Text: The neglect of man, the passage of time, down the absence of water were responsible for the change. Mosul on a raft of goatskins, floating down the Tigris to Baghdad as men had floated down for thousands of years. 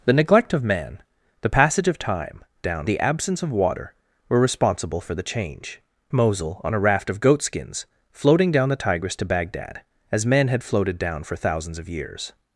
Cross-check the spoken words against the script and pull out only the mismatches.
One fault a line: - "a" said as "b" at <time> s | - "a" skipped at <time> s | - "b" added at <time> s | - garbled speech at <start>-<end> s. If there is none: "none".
none